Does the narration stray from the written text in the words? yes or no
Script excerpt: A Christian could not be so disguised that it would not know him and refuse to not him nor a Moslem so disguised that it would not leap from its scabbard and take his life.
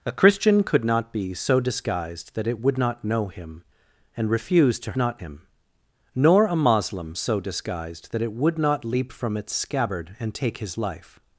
no